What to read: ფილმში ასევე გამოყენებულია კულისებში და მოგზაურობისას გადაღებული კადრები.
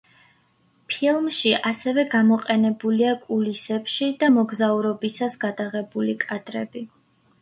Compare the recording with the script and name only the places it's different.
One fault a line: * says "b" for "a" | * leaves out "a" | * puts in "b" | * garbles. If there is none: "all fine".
all fine